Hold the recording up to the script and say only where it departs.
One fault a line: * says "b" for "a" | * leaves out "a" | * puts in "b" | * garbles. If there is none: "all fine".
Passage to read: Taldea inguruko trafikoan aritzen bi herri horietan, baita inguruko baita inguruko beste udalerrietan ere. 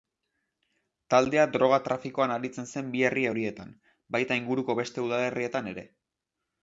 * says "droga" for "inguruko"
* puts in "zen"
* leaves out "baita inguruko"